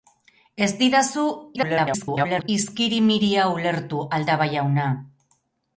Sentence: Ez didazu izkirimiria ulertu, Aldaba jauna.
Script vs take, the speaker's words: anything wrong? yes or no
yes